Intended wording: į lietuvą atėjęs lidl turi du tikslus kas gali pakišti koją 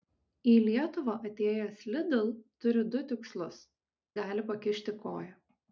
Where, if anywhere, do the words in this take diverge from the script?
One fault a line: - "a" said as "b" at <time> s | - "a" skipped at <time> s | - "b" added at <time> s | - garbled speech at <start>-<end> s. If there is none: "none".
- "kas" skipped at 3.6 s